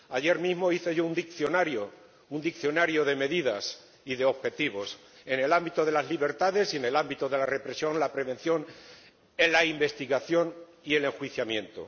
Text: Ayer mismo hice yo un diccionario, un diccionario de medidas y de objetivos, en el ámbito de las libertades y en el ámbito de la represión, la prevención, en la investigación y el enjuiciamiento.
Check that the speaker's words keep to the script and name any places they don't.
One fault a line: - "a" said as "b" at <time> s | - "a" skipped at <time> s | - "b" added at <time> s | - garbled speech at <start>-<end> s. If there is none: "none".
none